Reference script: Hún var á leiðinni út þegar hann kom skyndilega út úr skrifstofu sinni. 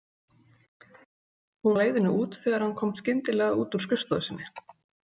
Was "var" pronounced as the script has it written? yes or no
no